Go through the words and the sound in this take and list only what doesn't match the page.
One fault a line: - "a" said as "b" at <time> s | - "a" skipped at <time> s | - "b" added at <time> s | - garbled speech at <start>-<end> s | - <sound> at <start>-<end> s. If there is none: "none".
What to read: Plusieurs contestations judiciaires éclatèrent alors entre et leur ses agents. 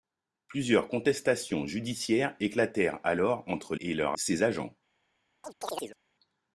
- chirp at 5.4-6.0 s